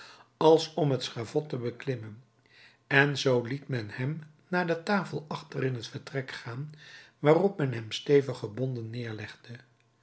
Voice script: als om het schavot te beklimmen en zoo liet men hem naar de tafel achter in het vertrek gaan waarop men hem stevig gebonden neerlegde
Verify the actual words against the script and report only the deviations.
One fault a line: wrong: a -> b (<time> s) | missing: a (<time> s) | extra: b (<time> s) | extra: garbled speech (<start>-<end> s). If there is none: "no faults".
no faults